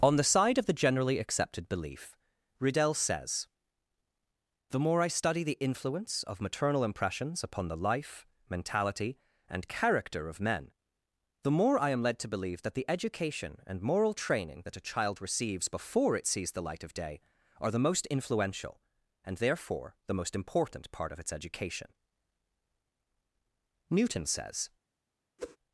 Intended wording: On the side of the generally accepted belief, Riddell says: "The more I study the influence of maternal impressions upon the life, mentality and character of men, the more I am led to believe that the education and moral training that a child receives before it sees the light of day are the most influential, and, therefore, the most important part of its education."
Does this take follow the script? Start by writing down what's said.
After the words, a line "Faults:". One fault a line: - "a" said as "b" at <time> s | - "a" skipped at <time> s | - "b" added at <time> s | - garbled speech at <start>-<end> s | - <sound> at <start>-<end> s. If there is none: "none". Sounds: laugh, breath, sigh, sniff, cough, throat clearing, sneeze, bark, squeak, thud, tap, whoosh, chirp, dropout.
On the side of the generally accepted belief, Riddell says: "The more I study the influence of maternal impressions upon the life, mentality and character of men, the more I am led to believe that the education and moral training that a child receives before it sees the light of day are the most influential, and, therefore, the most important part of its education." Newton says
Faults:
- "Newton says" added at 23.9 s
- whoosh at 25.4-25.6 s